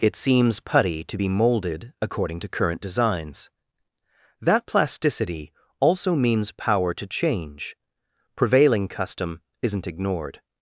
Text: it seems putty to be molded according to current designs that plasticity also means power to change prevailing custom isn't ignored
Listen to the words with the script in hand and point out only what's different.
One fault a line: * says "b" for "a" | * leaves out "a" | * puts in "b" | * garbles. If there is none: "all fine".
all fine